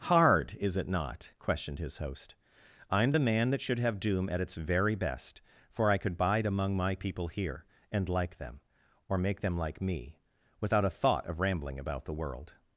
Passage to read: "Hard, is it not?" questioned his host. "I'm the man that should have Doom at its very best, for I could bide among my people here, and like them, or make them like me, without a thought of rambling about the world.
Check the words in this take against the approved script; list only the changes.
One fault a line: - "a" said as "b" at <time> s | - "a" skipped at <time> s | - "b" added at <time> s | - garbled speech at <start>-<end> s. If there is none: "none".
none